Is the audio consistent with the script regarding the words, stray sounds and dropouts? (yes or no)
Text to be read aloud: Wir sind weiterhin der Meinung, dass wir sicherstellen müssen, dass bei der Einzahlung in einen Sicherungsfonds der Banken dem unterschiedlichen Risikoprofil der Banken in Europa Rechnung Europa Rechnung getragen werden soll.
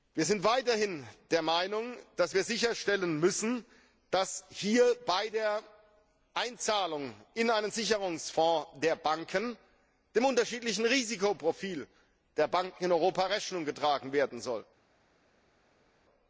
no